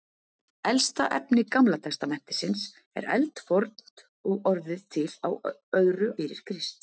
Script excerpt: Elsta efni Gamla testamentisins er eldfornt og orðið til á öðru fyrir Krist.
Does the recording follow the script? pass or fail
pass